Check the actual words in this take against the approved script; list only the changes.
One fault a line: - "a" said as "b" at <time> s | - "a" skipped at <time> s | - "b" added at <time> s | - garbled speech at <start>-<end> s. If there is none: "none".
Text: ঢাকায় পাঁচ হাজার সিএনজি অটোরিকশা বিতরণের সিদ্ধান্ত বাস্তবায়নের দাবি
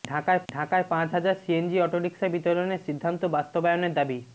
- "ঢাকায়" added at 0.5 s